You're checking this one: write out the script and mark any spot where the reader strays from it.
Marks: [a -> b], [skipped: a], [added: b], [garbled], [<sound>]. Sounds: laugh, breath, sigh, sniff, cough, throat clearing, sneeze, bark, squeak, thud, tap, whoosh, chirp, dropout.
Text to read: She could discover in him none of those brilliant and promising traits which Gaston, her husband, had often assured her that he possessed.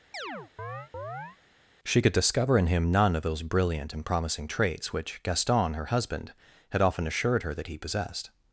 [chirp] She could discover in him none of those brilliant and promising traits which Gaston, her husband, had often assured her that he possessed.